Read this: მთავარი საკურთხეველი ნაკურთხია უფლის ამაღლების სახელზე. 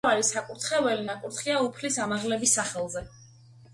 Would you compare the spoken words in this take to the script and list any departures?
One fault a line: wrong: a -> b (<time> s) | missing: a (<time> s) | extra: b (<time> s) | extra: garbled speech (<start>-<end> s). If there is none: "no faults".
no faults